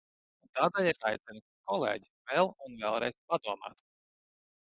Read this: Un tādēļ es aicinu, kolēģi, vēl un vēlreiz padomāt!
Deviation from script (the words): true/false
false